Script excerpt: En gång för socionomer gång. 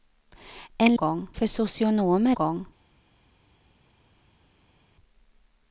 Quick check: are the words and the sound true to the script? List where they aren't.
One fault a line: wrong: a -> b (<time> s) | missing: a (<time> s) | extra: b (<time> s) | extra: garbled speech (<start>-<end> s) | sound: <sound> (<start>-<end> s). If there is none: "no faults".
no faults